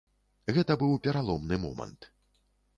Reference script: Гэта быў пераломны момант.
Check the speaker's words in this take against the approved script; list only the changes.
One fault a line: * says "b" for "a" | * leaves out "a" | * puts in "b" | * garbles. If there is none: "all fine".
all fine